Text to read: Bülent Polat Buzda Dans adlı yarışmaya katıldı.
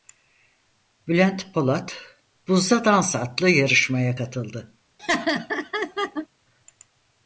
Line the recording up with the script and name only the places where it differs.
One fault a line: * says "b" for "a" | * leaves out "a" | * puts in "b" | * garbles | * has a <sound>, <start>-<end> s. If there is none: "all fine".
* has a laugh, 5.0-6.3 s